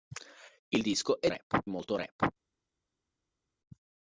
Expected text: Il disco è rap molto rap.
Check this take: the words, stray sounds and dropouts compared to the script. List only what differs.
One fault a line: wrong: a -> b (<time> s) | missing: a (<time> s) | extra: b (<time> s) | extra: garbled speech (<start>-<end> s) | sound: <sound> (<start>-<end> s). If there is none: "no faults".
no faults